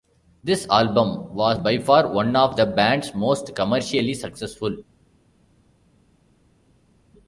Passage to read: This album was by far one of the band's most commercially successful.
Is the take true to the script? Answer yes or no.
yes